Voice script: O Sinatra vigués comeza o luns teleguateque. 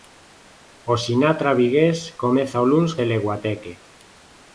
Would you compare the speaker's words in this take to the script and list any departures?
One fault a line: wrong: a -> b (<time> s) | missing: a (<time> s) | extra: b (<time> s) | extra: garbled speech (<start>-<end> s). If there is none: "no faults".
no faults